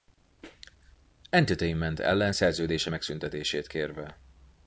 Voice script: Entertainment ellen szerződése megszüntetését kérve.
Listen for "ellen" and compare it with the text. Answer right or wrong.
right